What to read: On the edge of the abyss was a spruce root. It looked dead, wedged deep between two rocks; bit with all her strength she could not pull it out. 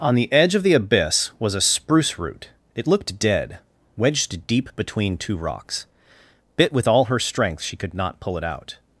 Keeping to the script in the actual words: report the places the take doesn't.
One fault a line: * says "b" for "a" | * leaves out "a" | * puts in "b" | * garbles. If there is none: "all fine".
all fine